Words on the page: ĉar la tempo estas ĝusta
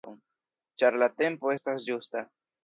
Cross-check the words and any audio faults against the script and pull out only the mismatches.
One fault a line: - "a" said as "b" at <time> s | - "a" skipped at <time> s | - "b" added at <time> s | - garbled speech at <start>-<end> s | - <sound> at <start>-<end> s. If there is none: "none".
none